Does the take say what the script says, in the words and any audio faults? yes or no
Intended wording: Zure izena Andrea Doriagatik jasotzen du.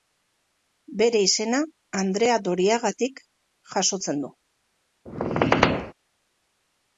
no